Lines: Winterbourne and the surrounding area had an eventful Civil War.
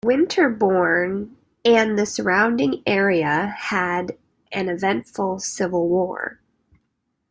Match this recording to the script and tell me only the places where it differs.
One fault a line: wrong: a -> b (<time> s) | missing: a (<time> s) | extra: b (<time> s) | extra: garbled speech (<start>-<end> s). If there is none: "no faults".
no faults